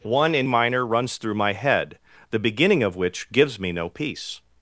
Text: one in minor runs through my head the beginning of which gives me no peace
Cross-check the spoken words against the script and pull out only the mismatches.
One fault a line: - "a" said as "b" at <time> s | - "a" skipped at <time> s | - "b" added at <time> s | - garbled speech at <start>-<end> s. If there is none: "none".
none